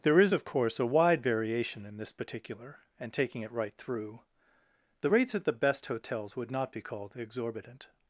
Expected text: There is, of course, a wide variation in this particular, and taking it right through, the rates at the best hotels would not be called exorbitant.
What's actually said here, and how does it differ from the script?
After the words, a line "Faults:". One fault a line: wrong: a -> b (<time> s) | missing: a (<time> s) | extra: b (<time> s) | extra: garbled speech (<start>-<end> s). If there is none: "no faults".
There is, of course, a wide variation in this particular, and taking it right through, the rates at the best hotels would not be called exorbitant.
Faults:
no faults